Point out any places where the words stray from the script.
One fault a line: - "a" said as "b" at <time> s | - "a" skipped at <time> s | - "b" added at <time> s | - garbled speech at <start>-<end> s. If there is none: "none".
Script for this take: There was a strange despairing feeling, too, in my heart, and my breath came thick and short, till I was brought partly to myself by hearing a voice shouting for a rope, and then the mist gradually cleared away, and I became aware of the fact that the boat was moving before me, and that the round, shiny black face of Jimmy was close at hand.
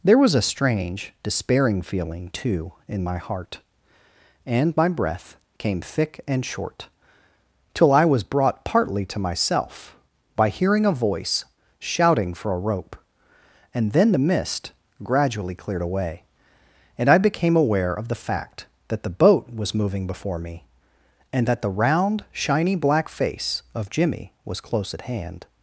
none